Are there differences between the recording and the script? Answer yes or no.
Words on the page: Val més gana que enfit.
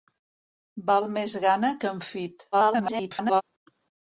yes